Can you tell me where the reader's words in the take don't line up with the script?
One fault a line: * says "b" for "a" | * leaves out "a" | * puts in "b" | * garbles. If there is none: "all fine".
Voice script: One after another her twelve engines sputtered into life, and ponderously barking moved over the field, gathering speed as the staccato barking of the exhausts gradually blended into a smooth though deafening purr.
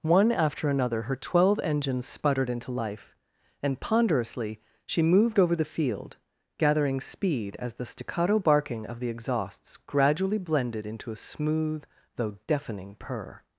* says "she" for "barking"